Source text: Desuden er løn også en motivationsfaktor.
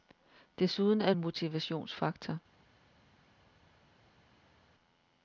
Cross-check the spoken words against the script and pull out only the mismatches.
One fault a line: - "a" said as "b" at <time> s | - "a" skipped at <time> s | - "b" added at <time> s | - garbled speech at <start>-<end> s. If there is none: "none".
- "løn også en" skipped at 1.1 s